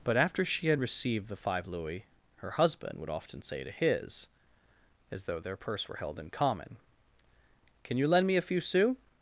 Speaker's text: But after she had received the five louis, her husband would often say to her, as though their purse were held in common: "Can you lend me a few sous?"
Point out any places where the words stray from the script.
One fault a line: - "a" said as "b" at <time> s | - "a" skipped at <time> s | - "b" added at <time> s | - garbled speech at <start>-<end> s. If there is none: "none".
- "her" said as "his" at 3.7 s